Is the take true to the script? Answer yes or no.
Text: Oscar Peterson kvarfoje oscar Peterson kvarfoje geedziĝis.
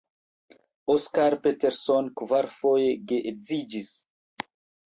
no